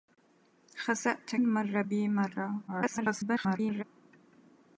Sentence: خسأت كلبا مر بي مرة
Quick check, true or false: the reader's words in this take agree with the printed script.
false